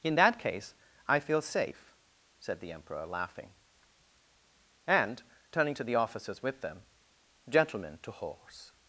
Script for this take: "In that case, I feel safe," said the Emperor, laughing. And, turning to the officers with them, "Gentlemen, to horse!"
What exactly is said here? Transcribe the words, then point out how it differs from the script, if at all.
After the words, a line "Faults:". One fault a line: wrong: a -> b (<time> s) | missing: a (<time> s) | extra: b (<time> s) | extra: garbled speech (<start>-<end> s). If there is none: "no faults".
"In that case, I feel safe," said the Emperor, laughing. And, turning to the officers with them, "Gentlemen, to horse!"
Faults:
no faults